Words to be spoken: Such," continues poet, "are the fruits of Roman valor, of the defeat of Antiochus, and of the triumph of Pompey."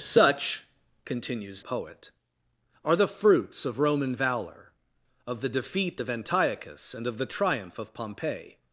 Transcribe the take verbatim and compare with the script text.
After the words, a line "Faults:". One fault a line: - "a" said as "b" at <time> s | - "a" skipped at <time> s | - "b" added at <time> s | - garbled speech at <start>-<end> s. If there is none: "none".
Such," continues poet, "are the fruits of Roman valor, of the defeat of Antiochus, and of the triumph of Pompey."
Faults:
none